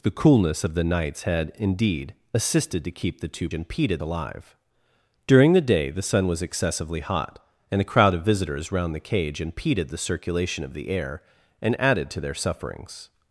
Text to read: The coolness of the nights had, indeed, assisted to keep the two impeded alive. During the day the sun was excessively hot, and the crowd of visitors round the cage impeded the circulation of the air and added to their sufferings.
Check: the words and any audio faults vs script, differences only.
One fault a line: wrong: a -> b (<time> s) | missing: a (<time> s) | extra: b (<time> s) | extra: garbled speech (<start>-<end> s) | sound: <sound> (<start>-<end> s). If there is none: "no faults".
no faults